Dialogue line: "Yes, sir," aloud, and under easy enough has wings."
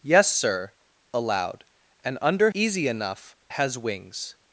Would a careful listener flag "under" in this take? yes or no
no